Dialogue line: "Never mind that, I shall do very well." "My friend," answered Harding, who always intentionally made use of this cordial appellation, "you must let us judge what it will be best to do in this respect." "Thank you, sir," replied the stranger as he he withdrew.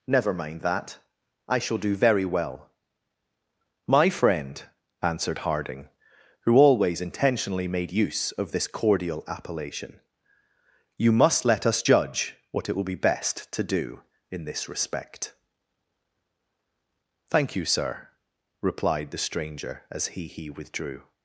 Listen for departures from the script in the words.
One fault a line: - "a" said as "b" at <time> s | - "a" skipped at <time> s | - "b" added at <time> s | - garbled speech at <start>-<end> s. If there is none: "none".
none